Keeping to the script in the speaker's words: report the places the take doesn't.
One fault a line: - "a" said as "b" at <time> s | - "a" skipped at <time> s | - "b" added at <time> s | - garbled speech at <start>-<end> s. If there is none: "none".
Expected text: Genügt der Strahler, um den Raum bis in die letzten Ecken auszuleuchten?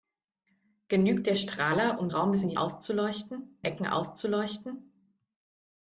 - "den" skipped at 2.1 s
- "letzten" said as "auszuleuchten" at 2.5 s